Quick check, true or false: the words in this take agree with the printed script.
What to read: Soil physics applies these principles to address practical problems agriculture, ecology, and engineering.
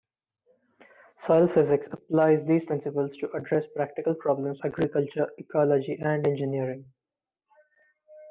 true